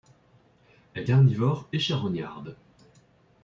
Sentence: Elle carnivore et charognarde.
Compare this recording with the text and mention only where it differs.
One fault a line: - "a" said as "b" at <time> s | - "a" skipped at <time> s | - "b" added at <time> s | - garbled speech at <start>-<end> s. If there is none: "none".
none